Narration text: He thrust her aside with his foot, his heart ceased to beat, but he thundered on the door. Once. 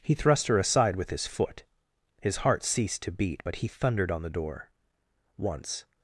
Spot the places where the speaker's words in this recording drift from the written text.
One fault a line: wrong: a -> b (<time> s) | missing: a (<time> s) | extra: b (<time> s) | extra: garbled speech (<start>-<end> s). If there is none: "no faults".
no faults